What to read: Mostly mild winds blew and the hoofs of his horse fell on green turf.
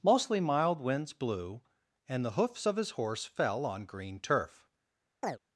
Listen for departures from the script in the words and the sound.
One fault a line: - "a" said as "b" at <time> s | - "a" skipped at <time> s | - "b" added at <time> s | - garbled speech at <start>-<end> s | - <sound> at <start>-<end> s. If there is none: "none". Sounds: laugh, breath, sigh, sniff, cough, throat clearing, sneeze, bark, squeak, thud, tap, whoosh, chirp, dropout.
- chirp at 5.2-5.4 s